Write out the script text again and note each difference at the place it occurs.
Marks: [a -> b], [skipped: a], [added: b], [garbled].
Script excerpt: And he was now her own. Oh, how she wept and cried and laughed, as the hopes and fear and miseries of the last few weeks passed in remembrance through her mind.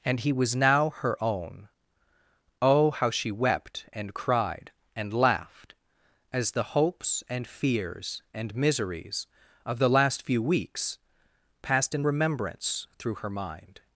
And he was now her own. Oh, how she wept and cried and laughed, as the hopes and [fear -> fears] and miseries of the last few weeks passed in remembrance through her mind.